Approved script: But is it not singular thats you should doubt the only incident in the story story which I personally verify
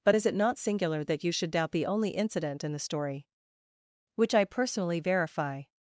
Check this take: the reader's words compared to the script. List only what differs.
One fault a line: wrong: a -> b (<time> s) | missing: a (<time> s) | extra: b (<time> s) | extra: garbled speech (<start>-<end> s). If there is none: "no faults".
wrong: thats -> that (1.0 s)
missing: story (3.3 s)